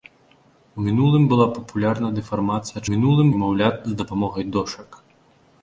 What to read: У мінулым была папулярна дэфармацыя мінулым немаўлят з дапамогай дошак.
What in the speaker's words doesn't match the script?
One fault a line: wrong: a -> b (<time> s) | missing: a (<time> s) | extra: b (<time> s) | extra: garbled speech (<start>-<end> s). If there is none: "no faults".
no faults